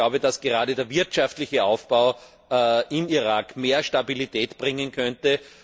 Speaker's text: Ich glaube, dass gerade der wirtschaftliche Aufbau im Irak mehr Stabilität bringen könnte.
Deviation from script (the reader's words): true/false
false